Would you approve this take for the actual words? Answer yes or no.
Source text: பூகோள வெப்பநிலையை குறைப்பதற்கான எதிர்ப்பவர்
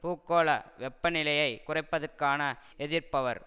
yes